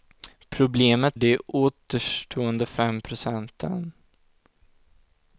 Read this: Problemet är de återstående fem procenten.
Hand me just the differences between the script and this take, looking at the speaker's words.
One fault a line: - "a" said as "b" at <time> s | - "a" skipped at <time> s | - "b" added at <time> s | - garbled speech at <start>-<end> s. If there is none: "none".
- "är" skipped at 1.2 s